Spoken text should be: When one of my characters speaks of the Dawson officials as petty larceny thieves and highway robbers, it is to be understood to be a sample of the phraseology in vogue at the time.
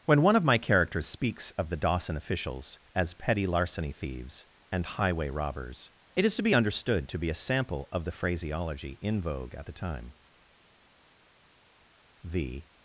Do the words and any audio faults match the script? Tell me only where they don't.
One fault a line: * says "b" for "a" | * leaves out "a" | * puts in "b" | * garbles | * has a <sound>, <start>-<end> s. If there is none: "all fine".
* puts in "The"